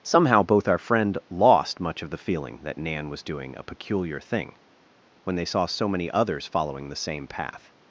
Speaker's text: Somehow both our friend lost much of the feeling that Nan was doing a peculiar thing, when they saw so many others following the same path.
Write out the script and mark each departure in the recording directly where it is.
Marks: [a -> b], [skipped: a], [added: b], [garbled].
Somehow both our friend lost much of the feeling that Nan was doing a peculiar thing, when they saw so many others following the same path.